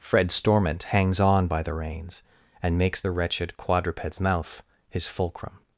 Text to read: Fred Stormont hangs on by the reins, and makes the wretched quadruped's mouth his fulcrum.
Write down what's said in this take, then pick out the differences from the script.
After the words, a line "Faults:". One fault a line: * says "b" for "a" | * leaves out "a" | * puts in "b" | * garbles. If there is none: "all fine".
Fred Stormont hangs on by the reins, and makes the wretched quadruped's mouth his fulcrum.
Faults:
all fine